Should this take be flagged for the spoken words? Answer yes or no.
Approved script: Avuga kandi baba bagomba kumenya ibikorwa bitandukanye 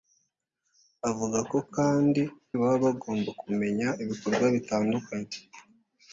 no